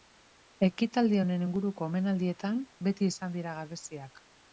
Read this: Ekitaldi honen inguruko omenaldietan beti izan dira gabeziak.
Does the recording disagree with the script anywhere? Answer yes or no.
no